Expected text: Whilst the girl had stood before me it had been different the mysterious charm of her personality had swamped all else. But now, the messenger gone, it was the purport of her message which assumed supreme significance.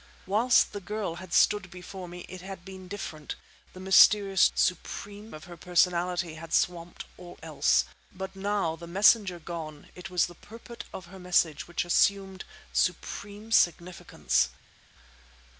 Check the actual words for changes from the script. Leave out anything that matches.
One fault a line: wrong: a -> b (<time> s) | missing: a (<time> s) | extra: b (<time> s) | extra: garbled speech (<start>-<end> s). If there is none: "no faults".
wrong: charm -> supreme (4.5 s)